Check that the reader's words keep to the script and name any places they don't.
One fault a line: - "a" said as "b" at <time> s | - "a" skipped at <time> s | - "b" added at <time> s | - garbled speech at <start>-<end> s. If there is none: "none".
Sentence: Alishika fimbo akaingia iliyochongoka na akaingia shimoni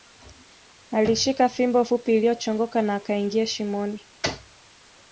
- "akaingia" said as "fupi" at 1.8 s